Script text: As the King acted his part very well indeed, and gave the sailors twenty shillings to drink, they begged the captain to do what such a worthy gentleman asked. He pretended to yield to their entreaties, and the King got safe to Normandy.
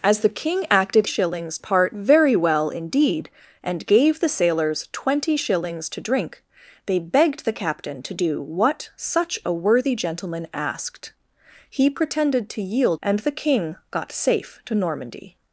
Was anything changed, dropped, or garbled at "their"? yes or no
yes